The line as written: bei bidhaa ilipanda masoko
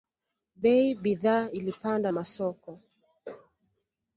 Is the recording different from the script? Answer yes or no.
no